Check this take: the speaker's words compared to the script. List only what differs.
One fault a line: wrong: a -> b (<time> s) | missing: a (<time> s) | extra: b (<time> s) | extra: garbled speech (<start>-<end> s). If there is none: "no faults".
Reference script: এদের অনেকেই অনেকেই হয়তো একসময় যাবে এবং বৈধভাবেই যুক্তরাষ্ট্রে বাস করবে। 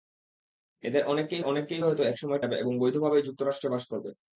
no faults